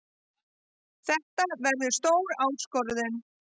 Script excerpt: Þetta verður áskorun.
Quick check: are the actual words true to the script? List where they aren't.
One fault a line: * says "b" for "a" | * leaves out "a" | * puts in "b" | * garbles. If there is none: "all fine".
* puts in "stór"